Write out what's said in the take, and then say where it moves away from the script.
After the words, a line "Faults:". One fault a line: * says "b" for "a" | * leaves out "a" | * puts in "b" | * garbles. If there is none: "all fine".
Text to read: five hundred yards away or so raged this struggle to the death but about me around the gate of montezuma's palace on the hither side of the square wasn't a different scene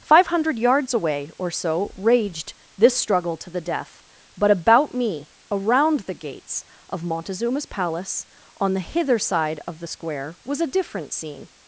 five hundred yards away or so raged this struggle to the death but about me around the gates of montezuma's palace on the hither side of the square was a different scene
Faults:
* says "gates" for "gate"
* says "was" for "wasn't"